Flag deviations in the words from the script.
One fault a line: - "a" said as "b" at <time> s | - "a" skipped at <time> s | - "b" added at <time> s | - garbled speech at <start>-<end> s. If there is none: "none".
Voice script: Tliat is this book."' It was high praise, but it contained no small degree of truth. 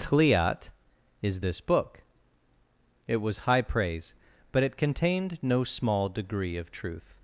none